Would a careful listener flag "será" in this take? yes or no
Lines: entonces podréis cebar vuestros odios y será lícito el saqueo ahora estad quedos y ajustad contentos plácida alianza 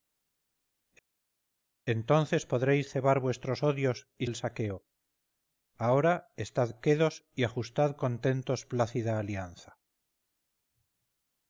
yes